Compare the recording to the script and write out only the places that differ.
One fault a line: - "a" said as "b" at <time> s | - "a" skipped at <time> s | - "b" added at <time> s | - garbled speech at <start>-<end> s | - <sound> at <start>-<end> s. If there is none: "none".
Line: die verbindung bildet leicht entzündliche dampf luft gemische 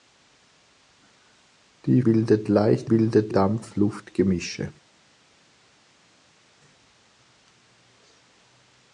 - "verbindung" skipped at 2.0 s
- "entzündliche" said as "bildet" at 2.9 s